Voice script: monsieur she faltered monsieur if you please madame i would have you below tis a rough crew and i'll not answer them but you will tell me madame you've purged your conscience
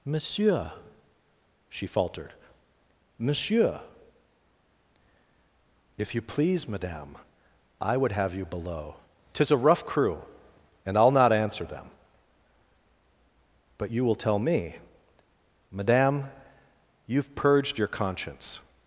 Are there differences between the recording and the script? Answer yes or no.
no